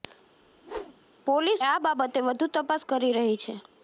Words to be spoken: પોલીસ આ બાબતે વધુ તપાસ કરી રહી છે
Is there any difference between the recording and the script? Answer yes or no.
no